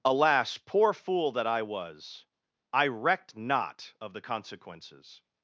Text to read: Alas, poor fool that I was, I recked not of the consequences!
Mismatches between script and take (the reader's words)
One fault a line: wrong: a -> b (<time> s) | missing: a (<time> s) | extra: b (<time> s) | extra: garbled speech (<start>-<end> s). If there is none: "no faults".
no faults